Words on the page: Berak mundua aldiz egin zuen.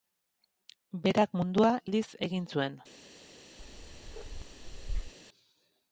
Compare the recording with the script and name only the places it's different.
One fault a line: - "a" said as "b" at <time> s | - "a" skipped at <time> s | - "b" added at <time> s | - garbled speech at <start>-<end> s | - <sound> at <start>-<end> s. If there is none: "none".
- bark at 3.6-5.1 s